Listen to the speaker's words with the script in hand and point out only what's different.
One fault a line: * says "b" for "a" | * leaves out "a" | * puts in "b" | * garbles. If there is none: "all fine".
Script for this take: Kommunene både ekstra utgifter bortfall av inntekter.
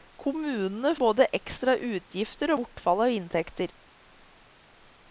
all fine